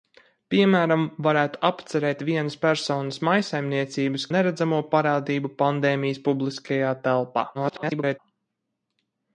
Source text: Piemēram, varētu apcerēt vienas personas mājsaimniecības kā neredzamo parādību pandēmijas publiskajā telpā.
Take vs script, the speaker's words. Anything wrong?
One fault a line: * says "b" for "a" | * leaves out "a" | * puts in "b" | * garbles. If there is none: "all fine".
* leaves out "kā"
* garbles